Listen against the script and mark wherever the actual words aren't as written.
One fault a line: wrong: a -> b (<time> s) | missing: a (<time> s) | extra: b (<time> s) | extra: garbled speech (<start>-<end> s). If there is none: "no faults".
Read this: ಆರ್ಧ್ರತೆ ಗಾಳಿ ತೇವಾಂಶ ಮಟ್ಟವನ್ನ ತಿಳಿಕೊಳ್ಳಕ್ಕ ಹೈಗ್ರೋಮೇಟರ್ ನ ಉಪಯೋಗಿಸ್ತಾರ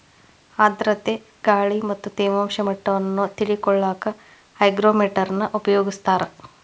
extra: ಮತ್ತ (1.9 s)